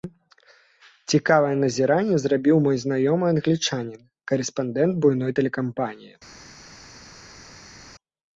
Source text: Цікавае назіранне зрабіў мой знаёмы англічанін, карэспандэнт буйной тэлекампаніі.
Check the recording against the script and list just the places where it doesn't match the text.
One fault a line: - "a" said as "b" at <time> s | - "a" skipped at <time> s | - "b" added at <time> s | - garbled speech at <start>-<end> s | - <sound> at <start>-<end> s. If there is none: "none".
none